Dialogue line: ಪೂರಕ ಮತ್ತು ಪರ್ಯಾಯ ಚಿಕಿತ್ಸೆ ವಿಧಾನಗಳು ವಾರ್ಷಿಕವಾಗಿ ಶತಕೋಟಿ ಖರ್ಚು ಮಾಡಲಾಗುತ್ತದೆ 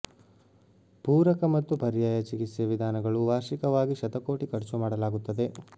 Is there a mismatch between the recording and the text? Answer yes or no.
no